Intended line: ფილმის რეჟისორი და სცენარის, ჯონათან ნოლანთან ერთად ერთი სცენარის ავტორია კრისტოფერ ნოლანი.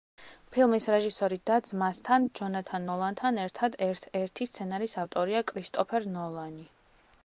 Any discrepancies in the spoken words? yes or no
yes